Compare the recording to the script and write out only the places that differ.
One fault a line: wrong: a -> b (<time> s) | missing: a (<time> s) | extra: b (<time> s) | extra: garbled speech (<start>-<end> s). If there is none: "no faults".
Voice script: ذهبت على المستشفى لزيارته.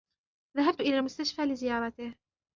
wrong: على -> إلى (0.8 s)